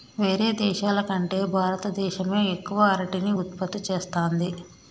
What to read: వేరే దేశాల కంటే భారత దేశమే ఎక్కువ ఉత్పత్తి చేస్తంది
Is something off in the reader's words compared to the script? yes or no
yes